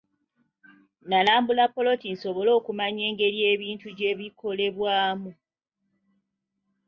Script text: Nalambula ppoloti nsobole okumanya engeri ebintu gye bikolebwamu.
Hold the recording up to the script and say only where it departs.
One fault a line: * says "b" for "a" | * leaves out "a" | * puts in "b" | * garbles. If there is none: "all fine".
all fine